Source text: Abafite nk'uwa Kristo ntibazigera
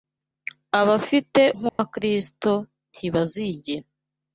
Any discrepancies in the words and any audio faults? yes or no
yes